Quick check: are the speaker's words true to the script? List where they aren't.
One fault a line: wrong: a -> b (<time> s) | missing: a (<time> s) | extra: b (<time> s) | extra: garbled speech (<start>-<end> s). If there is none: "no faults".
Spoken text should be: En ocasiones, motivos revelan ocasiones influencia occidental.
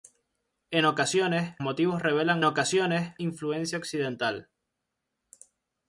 no faults